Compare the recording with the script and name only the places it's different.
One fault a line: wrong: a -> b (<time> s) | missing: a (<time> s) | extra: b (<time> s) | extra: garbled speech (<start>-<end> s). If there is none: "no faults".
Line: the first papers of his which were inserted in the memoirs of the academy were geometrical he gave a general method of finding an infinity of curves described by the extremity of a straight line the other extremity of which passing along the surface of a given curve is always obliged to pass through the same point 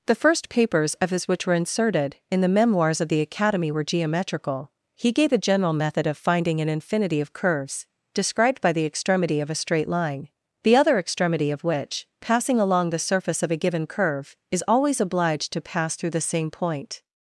no faults